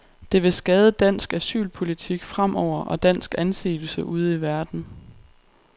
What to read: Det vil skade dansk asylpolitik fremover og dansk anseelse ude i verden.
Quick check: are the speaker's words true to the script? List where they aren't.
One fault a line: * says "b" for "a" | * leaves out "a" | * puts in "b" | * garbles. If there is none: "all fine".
all fine